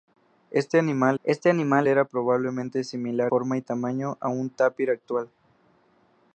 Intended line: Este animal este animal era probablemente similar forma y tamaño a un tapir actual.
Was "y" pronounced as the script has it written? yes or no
yes